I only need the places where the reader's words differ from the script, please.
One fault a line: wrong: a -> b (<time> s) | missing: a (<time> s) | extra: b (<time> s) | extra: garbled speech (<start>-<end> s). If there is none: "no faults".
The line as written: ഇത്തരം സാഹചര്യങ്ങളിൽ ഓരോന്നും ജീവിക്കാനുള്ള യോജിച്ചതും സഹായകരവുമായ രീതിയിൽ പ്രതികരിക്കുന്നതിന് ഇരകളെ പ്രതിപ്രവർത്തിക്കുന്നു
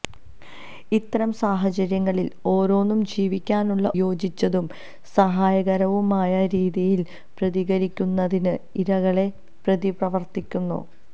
no faults